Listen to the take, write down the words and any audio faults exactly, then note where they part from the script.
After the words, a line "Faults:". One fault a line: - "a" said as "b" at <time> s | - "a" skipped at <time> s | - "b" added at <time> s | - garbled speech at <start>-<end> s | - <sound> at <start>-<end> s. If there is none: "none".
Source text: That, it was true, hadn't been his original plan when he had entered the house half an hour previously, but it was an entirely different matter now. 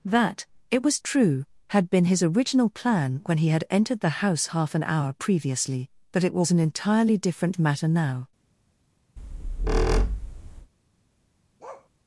That, it was true, had been his original plan when he had entered the house half an hour previously, but it was an entirely different matter now.
Faults:
- "hadn't" said as "had" at 1.7 s
- squeak at 9.2-10.7 s
- bark at 11.6-11.9 s